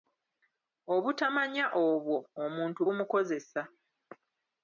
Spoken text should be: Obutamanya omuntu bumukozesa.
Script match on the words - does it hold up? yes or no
no